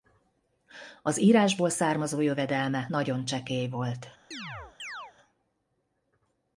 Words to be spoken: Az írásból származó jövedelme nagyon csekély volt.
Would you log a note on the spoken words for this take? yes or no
no